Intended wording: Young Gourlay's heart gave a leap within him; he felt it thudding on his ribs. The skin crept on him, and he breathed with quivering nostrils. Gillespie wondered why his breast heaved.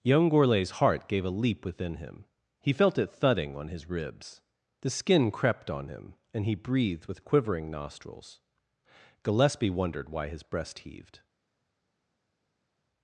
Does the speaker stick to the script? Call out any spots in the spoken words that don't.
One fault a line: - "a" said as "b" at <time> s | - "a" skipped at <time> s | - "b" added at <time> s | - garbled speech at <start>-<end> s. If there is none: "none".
none